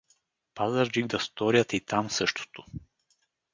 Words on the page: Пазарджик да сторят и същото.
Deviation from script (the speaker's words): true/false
true